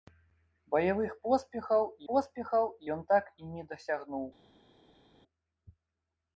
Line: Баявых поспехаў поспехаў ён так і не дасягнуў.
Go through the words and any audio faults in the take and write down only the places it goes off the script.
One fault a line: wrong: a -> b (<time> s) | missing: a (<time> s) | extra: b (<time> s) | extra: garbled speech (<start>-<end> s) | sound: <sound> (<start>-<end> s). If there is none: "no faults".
no faults